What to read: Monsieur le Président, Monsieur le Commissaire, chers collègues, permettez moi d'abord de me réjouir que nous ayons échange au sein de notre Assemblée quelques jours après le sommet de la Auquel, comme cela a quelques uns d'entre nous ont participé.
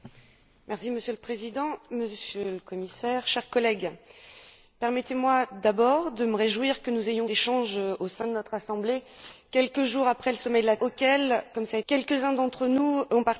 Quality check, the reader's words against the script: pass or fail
pass